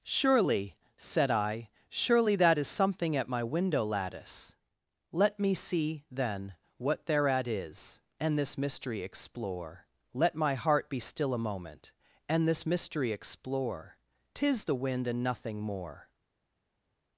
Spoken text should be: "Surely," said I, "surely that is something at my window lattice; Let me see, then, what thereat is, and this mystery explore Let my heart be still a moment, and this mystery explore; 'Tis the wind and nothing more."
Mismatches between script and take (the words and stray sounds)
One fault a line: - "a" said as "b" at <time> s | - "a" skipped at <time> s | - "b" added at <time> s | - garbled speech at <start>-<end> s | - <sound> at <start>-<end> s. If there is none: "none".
none